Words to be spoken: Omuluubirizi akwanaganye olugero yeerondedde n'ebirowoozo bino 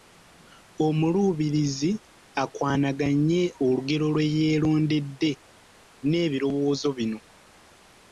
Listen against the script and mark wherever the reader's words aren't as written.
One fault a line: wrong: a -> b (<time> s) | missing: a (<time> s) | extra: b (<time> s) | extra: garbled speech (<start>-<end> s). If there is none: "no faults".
extra: lwe (4.1 s)